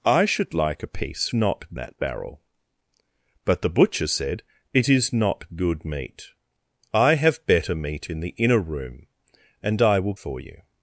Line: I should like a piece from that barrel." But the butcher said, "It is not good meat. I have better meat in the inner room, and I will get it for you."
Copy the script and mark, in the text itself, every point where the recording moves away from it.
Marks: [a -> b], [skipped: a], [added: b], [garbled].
I should like a piece [from -> not] that barrel." But the butcher said, "It is not good meat. I have better meat in the inner room, and I will [skipped: get it] for you."